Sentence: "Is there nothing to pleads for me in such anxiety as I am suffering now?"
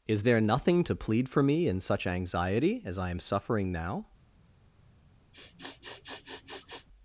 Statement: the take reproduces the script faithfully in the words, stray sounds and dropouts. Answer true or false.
false